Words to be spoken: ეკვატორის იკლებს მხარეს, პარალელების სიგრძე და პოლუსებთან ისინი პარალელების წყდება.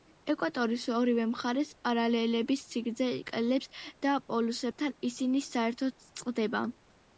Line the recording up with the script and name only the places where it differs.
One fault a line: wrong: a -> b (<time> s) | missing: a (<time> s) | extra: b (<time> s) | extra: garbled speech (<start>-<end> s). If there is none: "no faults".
wrong: იკლებს -> ორივე (1.0 s)
extra: იკლებს (3.2 s)
wrong: პარალელების -> საერთოდ (5.5 s)